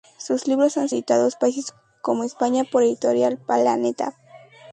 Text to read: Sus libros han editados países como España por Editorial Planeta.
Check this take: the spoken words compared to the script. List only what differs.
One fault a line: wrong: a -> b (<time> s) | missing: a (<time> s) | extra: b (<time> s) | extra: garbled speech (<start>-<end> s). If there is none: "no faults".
no faults